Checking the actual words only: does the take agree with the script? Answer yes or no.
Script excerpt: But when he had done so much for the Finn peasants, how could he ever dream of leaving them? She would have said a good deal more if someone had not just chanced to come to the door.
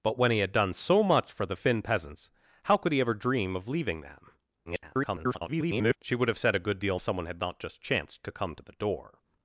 no